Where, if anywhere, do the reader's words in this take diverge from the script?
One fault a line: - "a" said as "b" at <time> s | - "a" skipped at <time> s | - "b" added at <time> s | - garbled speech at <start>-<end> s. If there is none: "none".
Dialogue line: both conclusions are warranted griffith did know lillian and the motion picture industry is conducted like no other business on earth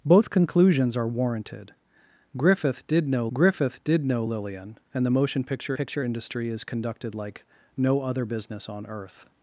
- "griffith did know" added at 3.3 s
- "picture" added at 5.7 s